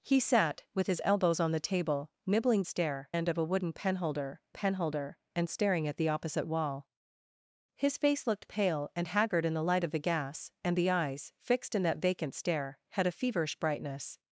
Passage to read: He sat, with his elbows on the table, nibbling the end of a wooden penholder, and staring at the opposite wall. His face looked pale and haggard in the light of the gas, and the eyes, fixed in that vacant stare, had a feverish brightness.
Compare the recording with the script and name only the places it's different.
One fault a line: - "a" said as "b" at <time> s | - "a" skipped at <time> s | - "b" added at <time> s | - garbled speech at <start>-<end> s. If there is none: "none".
- "the" said as "stare" at 2.7 s
- "penholder" added at 4.5 s